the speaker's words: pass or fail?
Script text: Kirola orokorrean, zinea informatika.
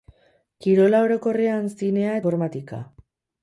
pass